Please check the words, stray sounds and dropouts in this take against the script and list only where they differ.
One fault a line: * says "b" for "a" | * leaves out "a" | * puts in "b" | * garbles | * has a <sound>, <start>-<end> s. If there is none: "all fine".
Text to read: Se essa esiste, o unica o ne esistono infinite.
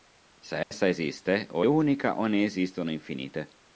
* has a dropout, 0.6-0.7 s